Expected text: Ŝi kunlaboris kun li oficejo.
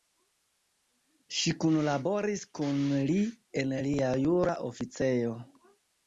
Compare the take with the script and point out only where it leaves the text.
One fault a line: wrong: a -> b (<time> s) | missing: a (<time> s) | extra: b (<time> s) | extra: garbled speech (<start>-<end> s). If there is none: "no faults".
extra: en lia jura (3.6 s)